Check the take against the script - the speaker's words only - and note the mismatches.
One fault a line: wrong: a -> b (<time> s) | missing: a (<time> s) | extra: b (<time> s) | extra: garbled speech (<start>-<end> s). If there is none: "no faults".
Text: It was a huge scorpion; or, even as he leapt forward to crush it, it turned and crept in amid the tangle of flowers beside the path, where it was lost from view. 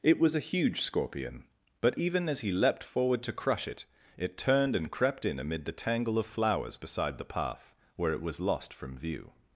wrong: or -> but (1.8 s)